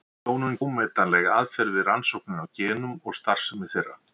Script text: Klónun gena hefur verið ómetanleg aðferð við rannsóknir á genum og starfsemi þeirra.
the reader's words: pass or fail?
fail